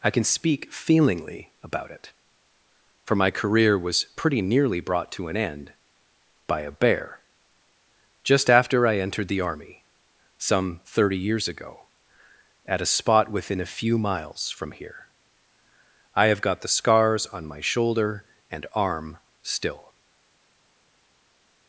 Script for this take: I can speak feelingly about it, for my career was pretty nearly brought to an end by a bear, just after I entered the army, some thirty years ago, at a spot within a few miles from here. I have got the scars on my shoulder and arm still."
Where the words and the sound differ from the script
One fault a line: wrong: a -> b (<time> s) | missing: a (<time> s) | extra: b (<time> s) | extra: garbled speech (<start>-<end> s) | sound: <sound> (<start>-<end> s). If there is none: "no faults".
no faults